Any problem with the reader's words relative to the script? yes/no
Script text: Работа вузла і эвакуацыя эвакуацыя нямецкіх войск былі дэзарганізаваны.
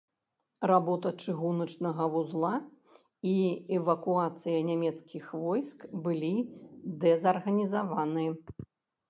yes